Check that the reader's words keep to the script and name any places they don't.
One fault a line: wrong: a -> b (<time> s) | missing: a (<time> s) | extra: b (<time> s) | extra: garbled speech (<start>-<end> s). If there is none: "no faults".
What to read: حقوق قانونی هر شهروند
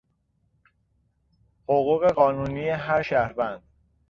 no faults